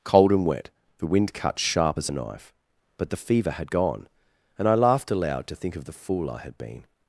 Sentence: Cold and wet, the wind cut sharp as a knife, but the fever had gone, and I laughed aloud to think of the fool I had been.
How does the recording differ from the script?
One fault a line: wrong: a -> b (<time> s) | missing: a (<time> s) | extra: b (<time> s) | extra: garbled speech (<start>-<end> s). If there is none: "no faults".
no faults